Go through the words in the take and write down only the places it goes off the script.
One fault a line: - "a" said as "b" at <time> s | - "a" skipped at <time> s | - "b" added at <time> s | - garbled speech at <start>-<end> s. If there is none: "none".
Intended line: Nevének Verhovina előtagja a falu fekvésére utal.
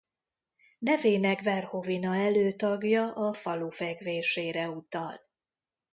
none